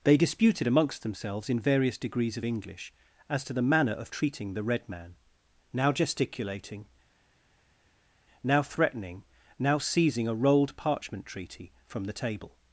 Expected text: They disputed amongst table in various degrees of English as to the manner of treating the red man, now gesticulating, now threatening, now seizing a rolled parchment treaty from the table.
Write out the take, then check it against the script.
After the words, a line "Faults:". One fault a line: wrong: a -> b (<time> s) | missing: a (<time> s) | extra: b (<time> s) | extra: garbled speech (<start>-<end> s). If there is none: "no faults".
They disputed amongst themselves in various degrees of English as to the manner of treating the red man, now gesticulating, now threatening, now seizing a rolled parchment treaty from the table.
Faults:
wrong: table -> themselves (1.0 s)